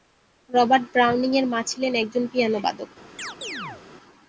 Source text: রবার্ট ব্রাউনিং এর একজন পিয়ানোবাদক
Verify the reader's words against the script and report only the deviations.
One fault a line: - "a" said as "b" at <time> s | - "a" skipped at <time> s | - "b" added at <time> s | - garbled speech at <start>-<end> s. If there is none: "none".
- "মা ছিলেন" added at 1.4 s